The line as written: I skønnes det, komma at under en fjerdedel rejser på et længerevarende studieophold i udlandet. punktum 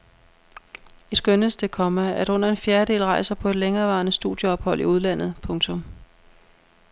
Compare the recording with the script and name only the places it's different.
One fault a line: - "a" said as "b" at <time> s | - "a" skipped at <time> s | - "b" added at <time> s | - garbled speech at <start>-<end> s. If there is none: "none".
none